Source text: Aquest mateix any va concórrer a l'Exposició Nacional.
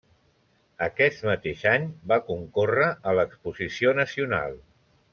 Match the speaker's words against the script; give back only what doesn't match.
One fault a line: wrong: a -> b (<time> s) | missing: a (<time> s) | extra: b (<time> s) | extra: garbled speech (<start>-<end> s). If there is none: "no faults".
no faults